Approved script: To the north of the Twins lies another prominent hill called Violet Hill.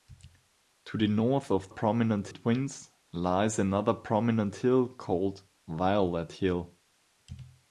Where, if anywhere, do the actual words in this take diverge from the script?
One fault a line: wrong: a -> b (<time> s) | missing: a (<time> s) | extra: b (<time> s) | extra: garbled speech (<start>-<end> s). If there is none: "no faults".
wrong: the -> prominent (1.7 s)